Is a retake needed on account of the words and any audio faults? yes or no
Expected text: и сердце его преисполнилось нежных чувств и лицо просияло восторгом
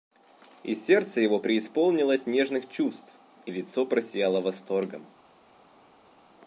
no